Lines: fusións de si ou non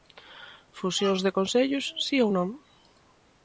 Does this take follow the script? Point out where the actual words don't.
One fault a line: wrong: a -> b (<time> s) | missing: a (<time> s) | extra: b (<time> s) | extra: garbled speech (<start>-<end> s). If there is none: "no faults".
extra: concellos (1.4 s)